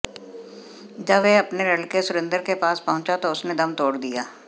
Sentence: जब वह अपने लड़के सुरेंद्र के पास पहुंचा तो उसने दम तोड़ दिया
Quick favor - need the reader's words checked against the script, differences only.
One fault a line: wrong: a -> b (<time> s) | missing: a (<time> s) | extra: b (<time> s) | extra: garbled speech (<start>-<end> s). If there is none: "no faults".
no faults